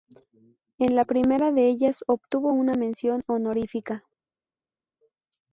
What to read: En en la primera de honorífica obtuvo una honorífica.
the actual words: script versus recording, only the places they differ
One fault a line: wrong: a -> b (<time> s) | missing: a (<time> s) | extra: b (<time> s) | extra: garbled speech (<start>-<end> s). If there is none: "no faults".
missing: en (0.9 s)
wrong: honorífica -> ellas (1.7 s)
extra: mención (2.7 s)